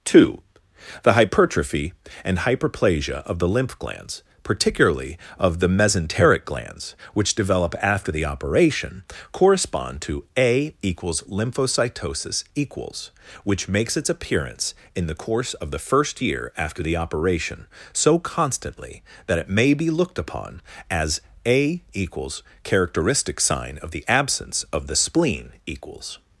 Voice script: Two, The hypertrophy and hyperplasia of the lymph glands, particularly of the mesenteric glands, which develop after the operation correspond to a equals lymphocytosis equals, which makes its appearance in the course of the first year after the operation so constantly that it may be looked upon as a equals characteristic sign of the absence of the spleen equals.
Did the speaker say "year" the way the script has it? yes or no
yes